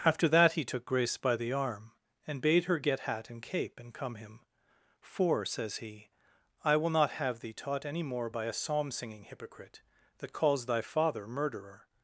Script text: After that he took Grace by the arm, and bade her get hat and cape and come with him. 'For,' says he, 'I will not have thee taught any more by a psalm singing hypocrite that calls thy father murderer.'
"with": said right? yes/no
no